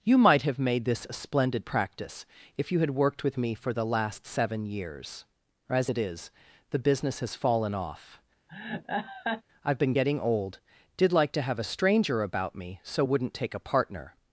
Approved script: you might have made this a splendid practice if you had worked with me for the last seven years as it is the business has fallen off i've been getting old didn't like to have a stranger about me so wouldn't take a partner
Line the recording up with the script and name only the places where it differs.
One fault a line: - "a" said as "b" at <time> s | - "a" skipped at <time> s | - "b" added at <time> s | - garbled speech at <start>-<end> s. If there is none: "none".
- "didn't" said as "did" at 10.9 s